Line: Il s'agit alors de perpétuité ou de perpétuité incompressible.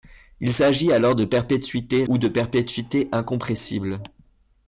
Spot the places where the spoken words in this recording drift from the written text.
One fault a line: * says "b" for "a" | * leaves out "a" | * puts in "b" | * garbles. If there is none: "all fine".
all fine